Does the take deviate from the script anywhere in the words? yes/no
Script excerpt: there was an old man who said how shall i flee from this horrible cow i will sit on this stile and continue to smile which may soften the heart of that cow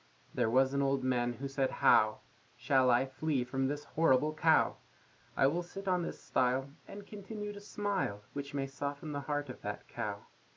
no